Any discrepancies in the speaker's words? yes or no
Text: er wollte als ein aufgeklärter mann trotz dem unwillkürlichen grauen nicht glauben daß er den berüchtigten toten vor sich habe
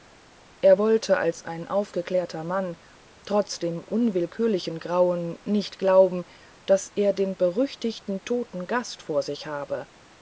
yes